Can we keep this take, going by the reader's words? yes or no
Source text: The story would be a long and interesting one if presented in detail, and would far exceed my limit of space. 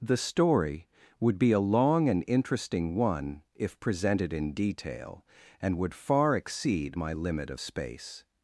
yes